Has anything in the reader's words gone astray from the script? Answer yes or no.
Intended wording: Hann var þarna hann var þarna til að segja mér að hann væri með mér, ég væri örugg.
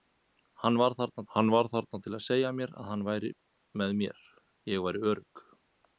no